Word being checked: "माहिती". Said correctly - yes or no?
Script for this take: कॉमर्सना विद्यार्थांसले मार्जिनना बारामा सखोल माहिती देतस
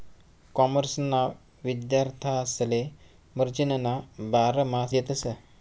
no